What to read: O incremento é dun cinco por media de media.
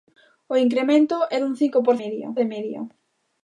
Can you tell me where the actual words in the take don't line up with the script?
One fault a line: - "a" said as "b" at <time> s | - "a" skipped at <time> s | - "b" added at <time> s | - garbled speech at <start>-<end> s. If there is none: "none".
none